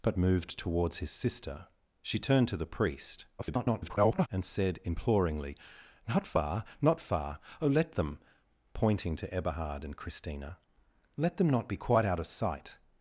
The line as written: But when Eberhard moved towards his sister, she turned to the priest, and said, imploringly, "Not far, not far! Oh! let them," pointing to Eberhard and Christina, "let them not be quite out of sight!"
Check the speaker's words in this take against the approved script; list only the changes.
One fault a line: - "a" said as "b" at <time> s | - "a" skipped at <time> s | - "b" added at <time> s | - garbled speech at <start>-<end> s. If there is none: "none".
- "when Eberhard" skipped at 0.2 s
- garbled speech at 3.4-4.3 s